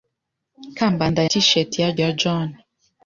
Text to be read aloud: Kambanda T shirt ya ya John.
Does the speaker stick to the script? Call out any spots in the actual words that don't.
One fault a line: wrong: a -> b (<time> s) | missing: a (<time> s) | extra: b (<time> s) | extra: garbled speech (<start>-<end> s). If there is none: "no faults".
no faults